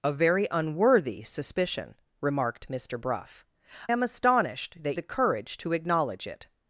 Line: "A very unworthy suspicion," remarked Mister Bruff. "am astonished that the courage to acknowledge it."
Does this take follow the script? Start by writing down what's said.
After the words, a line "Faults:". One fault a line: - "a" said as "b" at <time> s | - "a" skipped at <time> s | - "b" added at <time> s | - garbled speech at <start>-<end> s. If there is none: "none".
"A very unworthy suspicion," remarked Mister Bruff. "am astonished that the courage to acknowledge it."
Faults:
none